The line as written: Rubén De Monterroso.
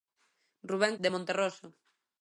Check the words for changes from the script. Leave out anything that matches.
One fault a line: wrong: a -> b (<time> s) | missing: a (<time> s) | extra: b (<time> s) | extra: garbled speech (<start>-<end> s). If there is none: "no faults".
no faults